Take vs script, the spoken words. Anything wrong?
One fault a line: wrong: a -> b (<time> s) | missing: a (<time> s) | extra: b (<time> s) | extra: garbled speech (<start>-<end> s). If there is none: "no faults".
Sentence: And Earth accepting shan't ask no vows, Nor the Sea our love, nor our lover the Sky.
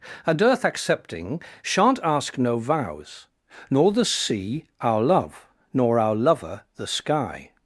no faults